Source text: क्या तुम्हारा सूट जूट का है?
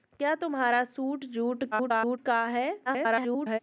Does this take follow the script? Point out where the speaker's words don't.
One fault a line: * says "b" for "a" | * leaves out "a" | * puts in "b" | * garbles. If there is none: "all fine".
* garbles
* garbles